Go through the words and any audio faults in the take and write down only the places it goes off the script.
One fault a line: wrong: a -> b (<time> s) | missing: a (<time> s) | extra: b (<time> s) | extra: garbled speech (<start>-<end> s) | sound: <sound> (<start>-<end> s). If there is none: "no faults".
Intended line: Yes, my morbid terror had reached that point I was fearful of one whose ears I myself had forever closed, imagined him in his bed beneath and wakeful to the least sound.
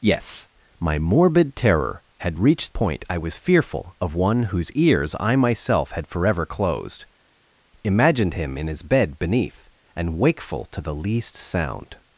missing: that (2.7 s)